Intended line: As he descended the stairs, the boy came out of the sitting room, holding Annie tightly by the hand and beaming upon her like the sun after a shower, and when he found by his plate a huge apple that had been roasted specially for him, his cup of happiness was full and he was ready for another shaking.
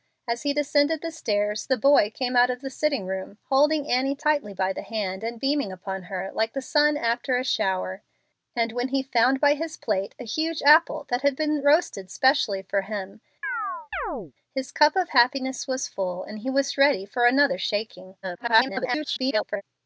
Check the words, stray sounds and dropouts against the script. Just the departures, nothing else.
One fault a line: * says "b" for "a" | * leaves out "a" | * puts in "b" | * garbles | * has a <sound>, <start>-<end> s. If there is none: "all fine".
* has a chirp, 13.4-14.3 s
* garbles